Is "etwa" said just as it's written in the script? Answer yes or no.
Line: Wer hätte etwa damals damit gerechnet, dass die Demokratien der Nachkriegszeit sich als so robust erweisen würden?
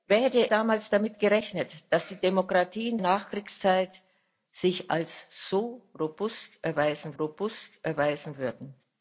no